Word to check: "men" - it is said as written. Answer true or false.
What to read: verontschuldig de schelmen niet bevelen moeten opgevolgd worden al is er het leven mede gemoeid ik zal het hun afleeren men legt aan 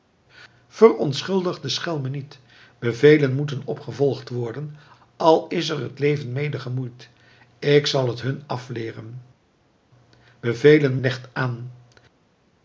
false